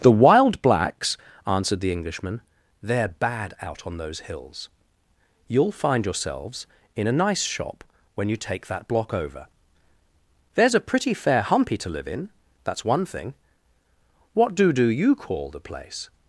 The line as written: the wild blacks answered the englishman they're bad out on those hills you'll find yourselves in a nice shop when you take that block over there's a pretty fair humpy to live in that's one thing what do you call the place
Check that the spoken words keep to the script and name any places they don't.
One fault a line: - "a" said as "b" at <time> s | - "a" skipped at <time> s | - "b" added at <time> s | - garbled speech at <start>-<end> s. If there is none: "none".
- "do" added at 14.7 s